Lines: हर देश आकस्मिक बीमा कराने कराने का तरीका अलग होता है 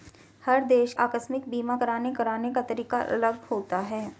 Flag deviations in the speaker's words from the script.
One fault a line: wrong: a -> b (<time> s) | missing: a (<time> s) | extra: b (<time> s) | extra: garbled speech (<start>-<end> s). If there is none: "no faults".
no faults